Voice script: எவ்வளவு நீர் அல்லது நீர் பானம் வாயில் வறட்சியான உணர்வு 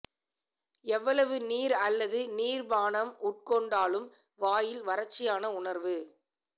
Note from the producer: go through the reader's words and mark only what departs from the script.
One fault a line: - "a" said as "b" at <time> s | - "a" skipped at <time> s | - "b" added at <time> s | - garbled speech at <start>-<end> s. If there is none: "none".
- "உட்கொண்டாலும்" added at 3.2 s